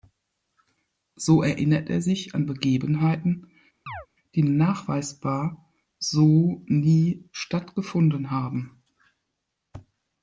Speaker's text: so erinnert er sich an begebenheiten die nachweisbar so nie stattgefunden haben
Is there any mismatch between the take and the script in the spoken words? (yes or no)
no